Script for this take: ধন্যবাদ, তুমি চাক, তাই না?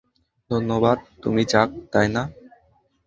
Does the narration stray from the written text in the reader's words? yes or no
no